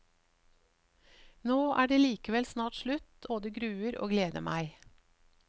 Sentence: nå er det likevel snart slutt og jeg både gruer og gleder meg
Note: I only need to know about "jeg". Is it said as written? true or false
false